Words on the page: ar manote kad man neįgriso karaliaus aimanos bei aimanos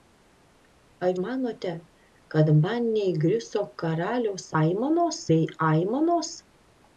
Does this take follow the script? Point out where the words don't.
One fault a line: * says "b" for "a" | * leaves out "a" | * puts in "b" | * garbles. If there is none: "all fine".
all fine